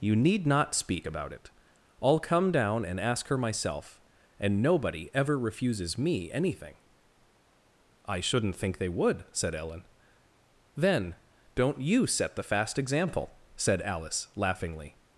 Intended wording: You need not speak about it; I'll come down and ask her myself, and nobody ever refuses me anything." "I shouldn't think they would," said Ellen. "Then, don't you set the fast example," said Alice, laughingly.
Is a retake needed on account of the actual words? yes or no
no